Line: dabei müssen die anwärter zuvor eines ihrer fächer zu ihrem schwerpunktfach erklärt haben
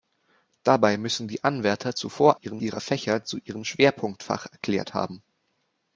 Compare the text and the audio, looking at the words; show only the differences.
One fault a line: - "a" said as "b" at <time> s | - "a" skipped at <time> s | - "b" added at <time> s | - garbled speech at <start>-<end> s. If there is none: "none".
- "eines" said as "ihrem" at 2.3 s